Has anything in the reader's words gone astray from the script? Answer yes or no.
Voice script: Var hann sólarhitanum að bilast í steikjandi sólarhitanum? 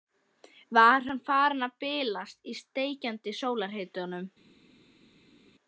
yes